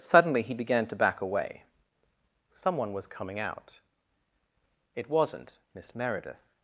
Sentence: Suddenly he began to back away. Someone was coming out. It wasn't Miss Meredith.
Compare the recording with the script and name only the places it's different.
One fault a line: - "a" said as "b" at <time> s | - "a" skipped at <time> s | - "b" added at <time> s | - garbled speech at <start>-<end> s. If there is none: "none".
none